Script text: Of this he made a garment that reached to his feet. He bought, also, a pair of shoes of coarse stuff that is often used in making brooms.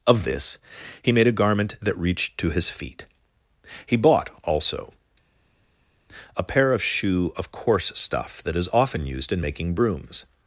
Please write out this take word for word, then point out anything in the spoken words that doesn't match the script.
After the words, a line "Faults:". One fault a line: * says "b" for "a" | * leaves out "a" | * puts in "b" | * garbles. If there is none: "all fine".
Of this he made a garment that reached to his feet. He bought, also, a pair of shoe of coarse stuff that is often used in making brooms.
Faults:
* says "shoe" for "shoes"